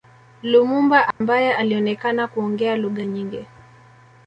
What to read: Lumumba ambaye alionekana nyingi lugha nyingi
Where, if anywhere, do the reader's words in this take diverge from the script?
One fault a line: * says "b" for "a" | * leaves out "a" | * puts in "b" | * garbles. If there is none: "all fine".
* says "kuongea" for "nyingi"